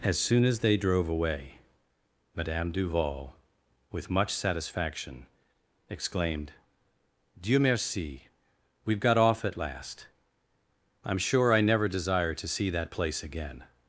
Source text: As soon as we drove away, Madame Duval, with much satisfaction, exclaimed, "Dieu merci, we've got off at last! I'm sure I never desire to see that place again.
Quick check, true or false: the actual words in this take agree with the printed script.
false